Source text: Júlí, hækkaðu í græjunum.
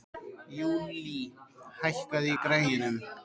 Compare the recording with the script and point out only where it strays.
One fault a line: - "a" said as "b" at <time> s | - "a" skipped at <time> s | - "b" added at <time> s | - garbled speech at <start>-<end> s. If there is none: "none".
none